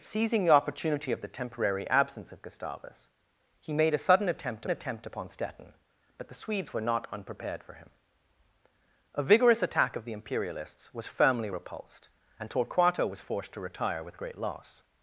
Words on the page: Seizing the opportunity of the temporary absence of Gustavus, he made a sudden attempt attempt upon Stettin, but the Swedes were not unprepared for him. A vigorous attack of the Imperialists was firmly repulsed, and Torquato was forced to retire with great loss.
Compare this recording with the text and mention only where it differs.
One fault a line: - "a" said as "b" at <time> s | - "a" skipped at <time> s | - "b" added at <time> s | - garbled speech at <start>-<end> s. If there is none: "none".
none